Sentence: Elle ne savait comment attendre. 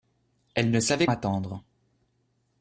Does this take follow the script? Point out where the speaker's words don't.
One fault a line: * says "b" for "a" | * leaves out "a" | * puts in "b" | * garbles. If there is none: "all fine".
* leaves out "comment"